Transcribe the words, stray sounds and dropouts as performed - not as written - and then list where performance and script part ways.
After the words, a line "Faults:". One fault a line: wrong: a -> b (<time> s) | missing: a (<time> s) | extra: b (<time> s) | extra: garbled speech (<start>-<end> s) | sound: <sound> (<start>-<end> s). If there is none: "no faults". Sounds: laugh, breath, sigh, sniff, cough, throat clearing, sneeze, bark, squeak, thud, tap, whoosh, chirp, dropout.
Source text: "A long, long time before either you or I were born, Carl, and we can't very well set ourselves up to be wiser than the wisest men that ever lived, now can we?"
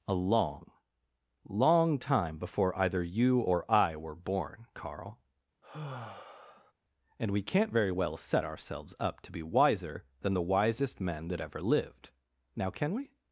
"A long, long time before either you or I were born, Carl, and we can't very well set ourselves up to be wiser than the wisest men that ever lived, now can we?"
Faults:
sound: sigh (5.6-6.7 s)